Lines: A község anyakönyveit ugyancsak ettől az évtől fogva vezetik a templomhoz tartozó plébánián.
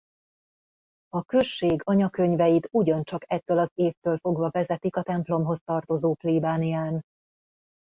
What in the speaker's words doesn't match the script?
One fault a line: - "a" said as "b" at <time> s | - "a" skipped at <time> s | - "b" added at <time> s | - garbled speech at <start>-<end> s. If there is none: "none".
none